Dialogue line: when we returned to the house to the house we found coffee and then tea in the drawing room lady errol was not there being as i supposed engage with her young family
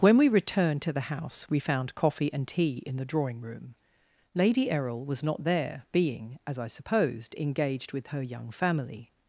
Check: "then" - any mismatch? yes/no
yes